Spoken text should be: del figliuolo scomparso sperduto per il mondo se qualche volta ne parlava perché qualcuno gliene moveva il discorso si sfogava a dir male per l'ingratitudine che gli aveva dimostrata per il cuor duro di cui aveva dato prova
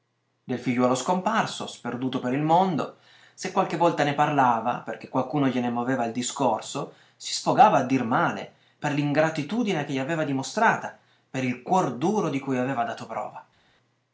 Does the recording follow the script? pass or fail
pass